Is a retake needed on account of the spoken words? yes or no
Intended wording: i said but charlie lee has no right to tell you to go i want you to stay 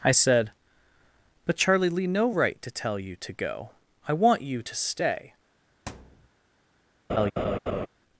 yes